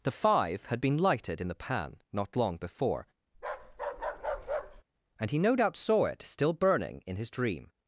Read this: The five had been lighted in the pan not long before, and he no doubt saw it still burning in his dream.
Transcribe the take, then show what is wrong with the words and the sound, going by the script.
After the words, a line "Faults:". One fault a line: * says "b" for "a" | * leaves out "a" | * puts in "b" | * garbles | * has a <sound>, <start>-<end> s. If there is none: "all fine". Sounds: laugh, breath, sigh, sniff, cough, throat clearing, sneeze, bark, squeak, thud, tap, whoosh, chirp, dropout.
The five had been lighted in the pan not long before, and he no doubt saw it still burning in his dream.
Faults:
* has a bark, 3.3-4.8 s